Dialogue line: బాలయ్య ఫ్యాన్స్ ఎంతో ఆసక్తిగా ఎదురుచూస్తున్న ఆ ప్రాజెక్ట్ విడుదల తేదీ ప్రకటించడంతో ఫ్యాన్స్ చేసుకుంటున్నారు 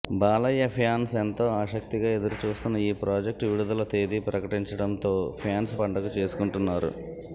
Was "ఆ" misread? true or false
true